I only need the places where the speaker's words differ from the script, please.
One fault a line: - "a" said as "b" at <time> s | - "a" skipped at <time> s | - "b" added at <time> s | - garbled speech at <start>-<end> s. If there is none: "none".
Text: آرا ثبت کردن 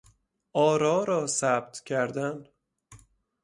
- "را" added at 1.0 s